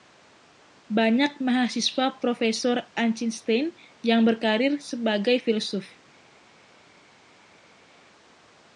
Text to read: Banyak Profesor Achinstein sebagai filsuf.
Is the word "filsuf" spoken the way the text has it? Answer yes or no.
yes